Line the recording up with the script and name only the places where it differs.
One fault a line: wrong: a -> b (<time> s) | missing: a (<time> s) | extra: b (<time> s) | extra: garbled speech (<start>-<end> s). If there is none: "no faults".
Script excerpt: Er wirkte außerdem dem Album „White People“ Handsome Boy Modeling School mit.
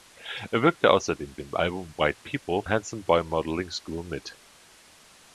no faults